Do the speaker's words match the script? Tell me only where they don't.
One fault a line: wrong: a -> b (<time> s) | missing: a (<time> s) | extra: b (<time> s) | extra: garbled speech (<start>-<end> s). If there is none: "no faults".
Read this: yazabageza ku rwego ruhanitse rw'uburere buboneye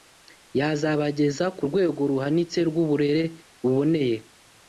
no faults